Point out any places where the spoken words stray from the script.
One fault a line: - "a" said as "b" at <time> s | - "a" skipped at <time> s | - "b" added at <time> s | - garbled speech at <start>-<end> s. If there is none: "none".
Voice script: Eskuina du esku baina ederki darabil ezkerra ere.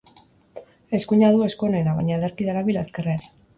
- "onena" added at 1.7 s